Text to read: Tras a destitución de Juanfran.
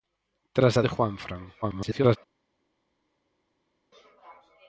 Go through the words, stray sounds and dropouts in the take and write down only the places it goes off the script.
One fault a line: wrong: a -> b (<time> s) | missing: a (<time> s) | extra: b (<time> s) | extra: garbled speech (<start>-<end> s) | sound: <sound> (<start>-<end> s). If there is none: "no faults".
missing: destitución (0.8 s)
extra: garbled speech (1.6-2.2 s)